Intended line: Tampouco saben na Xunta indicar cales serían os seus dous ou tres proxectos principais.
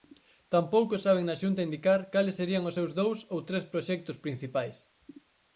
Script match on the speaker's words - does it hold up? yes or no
yes